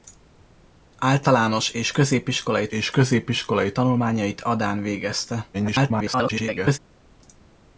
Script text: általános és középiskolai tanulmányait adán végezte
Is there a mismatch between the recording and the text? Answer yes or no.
yes